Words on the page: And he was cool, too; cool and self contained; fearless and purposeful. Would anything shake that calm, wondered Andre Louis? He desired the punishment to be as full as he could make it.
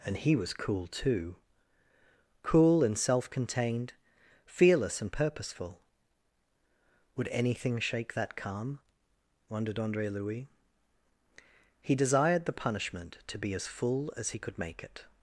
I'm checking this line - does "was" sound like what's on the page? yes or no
yes